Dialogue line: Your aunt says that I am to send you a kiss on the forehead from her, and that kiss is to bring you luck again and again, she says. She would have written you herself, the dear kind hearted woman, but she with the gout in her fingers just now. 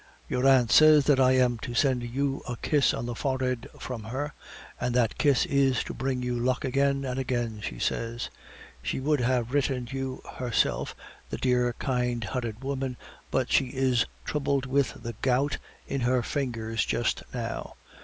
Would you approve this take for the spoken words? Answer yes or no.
no